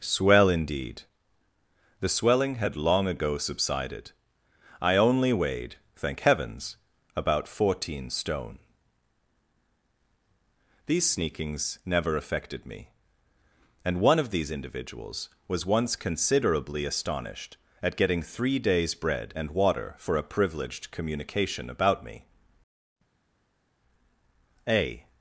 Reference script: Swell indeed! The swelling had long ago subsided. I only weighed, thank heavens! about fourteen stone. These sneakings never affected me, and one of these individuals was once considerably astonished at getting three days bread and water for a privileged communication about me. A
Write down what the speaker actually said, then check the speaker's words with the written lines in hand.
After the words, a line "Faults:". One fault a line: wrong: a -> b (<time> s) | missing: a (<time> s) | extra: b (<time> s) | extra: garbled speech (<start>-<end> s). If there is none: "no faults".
Swell indeed! The swelling had long ago subsided. I only weighed, thank heavens! about fourteen stone. These sneakings never affected me, and one of these individuals was once considerably astonished at getting three days bread and water for a privileged communication about me. A
Faults:
no faults